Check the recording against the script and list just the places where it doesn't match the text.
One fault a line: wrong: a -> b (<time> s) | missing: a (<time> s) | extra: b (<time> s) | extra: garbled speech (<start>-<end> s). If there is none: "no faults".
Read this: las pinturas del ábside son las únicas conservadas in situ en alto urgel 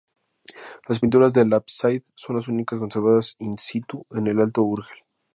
extra: el (4.3 s)